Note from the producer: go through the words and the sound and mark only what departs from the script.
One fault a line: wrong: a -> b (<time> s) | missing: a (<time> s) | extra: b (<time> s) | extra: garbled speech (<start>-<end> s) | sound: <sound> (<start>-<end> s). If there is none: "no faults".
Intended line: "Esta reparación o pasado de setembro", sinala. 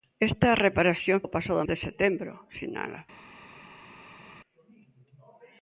no faults